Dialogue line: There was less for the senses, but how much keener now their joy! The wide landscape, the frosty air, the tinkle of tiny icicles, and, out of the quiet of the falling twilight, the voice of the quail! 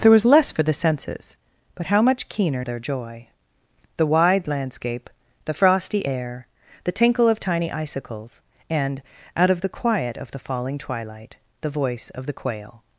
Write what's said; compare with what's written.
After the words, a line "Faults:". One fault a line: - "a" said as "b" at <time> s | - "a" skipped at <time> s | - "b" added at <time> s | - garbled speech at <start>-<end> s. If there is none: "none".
There was less for the senses, but how much keener their joy! The wide landscape, the frosty air, the tinkle of tiny icicles, and, out of the quiet of the falling twilight, the voice of the quail!
Faults:
- "now" skipped at 2.6 s